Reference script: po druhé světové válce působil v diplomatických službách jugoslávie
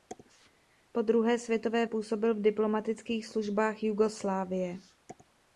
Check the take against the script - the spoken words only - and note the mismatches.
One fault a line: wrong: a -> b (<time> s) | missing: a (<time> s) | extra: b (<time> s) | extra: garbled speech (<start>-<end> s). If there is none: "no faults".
missing: válce (1.9 s)